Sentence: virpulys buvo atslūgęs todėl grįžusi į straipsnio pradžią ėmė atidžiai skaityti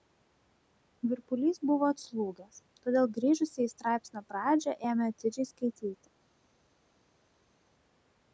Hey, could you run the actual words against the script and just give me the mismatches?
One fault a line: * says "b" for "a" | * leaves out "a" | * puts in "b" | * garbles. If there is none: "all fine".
all fine